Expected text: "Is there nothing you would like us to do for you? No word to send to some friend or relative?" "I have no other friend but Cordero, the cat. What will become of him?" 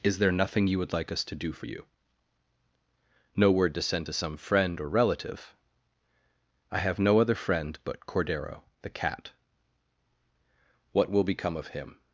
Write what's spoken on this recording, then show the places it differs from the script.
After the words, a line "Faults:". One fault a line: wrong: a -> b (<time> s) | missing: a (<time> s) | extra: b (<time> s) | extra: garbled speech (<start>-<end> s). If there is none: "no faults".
"Is there nothing you would like us to do for you? No word to send to some friend or relative?" "I have no other friend but Cordero, the cat. What will become of him?"
Faults:
no faults